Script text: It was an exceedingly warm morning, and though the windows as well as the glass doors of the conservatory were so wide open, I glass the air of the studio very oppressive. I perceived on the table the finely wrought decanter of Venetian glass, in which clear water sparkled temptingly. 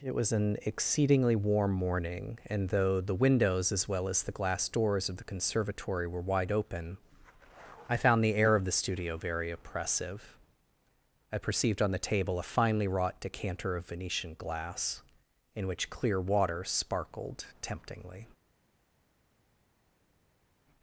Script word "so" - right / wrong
wrong